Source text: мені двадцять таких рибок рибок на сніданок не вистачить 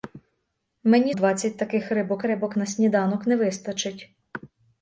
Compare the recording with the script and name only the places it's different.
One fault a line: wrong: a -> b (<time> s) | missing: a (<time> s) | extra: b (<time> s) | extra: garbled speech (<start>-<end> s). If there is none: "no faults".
no faults